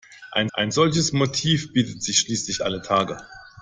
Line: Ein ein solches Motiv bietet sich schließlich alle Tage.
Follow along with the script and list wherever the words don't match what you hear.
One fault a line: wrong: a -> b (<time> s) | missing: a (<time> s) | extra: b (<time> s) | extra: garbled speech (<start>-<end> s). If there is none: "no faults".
no faults